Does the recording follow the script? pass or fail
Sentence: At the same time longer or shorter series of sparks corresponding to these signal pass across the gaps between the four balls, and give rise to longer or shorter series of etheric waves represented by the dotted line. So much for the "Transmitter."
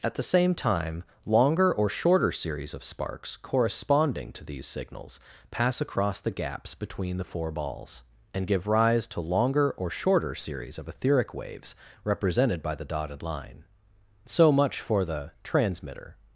fail